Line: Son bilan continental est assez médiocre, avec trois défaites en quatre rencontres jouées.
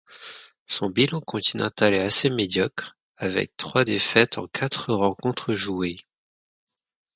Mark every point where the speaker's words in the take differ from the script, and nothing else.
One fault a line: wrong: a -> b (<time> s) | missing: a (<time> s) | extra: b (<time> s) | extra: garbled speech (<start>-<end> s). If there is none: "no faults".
no faults